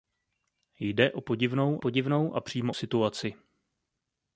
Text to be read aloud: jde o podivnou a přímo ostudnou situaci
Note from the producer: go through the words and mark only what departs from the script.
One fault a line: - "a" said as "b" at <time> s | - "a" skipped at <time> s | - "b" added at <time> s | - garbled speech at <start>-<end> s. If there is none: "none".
- "podivnou" added at 1.8 s
- "ostudnou" skipped at 2.7 s